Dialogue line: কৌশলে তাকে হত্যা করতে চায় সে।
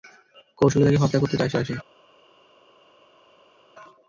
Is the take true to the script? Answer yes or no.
no